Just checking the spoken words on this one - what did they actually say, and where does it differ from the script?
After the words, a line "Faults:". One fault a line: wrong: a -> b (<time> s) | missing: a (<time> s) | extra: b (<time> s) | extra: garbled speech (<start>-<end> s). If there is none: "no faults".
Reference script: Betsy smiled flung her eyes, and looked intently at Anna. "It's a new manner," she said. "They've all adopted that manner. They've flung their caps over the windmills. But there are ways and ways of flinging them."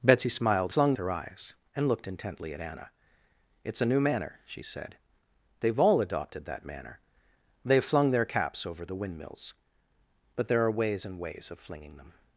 Betsy smiled flung her eyes, and looked intently at Anna. "It's a new manner," she said. "They've all adopted that manner. They've flung their caps over the windmills. But there are ways and ways of flinging them."
Faults:
no faults